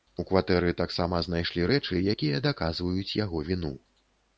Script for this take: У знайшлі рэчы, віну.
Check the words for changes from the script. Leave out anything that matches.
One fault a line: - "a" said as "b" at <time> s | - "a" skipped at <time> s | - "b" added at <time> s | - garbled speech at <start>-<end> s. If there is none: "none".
- "кватэры таксама" added at 0.3 s
- "якія даказваюць яго" added at 2.1 s